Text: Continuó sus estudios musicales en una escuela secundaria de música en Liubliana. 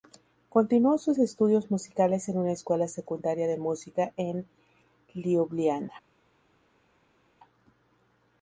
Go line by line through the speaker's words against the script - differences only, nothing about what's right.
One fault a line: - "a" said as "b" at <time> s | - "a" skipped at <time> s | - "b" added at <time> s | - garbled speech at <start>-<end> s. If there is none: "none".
none